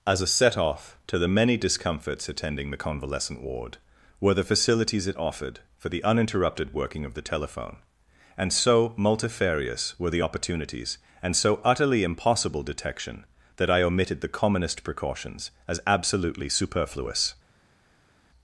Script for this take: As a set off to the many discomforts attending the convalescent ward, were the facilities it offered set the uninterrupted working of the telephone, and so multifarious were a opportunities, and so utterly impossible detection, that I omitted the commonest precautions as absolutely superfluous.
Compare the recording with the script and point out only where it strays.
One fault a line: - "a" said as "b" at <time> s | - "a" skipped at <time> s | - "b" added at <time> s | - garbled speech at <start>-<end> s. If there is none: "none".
- "set" said as "for" at 5.8 s
- "a" said as "the" at 10.1 s